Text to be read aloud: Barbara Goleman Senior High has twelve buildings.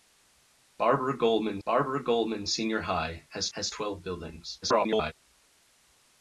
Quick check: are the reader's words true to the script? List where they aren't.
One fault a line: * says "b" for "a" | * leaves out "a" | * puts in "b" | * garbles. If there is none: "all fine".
* puts in "barbara Goleman"
* puts in "has"
* garbles